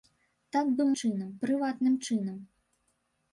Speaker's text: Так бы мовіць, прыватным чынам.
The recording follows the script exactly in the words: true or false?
false